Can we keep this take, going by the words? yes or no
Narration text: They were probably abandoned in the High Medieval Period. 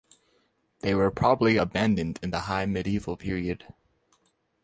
yes